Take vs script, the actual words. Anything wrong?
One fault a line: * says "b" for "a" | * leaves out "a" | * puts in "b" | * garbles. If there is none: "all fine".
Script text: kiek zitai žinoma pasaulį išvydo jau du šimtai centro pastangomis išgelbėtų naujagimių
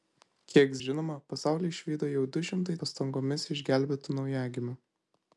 * leaves out "zitai"
* leaves out "centro"